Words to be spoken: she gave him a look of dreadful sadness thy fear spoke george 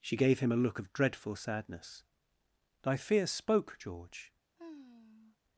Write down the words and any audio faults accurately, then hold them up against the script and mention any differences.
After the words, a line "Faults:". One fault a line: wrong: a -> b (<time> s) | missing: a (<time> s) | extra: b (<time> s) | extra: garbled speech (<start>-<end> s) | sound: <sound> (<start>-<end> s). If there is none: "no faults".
she gave him a look of dreadful sadness thy fear spoke george
Faults:
sound: sigh (4.6-5.4 s)